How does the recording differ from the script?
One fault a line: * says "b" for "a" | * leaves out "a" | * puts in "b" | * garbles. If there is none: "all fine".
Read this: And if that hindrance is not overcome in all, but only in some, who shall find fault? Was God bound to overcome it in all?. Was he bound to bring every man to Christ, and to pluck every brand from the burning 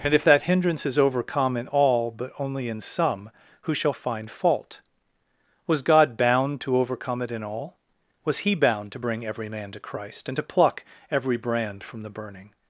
* leaves out "not"